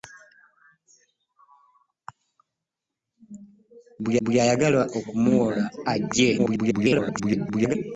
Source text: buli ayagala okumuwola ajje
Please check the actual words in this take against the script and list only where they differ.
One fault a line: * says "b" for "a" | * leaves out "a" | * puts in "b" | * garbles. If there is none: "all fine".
* puts in "buli"
* garbles